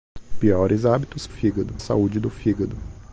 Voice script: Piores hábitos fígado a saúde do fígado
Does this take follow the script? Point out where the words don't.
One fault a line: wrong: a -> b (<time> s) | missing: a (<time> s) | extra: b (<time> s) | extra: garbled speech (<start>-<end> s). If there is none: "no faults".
no faults